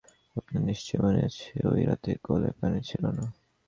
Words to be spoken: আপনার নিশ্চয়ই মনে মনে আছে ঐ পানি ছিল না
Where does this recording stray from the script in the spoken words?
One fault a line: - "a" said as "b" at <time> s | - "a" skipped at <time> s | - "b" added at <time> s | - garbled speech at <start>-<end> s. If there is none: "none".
- "মনে" skipped at 1.2 s
- "রাতে কলে" added at 1.9 s